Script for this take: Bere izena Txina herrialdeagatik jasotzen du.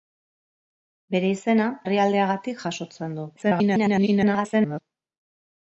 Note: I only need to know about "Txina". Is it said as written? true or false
false